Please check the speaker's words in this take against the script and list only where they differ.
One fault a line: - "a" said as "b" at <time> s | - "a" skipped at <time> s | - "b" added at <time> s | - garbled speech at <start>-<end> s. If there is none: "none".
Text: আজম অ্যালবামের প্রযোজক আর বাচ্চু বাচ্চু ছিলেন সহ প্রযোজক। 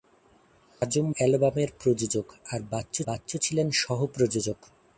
none